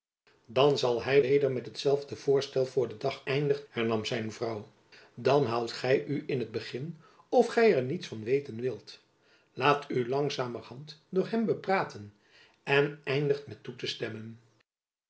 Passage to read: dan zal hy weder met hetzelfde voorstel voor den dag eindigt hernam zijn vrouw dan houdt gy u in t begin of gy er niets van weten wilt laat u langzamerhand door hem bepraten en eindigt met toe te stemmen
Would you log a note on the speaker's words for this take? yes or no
no